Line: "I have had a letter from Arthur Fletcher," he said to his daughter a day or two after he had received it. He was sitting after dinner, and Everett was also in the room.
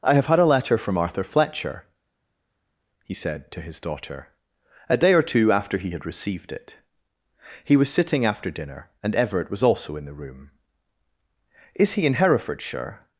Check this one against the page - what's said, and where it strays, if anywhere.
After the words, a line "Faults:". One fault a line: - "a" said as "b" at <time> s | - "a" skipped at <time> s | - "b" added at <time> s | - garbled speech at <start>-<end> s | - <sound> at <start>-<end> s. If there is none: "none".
"I have had a letter from Arthur Fletcher," he said to his daughter a day or two after he had received it. He was sitting after dinner, and Everett was also in the room. "Is he in Herefordshire
Faults:
- "Is he in Herefordshire" added at 11.8 s